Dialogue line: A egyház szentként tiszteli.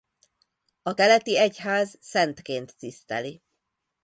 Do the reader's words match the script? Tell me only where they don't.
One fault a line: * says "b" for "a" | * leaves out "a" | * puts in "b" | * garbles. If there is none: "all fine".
* puts in "keleti"